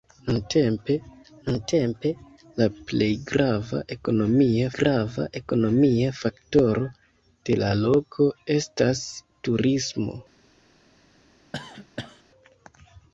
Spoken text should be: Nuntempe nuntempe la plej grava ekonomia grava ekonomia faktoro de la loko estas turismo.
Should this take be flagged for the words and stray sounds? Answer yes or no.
yes